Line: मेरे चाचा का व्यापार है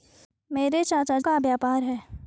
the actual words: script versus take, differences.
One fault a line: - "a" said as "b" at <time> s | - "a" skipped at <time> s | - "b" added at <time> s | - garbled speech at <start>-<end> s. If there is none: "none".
none